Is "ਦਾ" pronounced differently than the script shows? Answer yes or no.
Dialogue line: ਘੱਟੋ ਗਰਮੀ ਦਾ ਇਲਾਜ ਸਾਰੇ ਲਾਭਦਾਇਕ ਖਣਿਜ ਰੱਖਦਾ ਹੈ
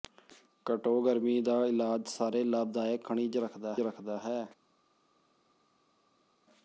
no